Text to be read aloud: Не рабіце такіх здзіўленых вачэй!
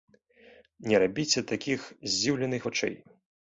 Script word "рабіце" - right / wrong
right